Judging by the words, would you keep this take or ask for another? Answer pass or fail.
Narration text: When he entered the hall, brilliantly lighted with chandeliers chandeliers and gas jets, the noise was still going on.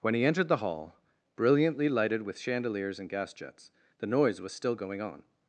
fail